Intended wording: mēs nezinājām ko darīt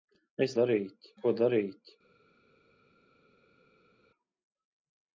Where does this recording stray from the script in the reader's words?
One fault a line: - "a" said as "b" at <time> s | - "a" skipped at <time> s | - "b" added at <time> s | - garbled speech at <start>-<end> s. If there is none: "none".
- "nezinājām" said as "darīt" at 0.6 s